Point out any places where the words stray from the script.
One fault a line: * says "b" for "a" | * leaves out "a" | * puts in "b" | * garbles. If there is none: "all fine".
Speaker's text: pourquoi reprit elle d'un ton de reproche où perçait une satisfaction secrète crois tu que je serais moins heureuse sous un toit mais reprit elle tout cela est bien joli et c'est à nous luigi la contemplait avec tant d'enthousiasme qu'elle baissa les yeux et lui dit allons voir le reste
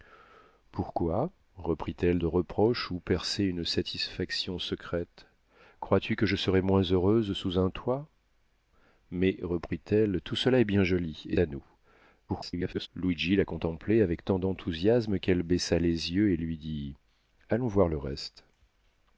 * leaves out "d'un ton"
* leaves out "c'est"
* garbles